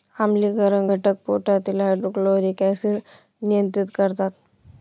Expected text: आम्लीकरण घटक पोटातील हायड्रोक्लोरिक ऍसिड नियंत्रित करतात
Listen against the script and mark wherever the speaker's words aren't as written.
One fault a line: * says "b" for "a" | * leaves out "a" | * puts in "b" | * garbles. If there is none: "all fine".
all fine